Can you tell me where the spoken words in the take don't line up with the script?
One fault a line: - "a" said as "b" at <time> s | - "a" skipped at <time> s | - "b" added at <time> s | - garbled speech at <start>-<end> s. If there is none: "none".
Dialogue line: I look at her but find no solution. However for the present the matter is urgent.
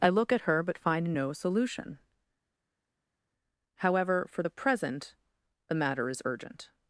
none